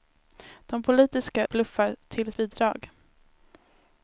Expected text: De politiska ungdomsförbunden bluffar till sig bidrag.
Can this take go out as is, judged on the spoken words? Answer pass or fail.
fail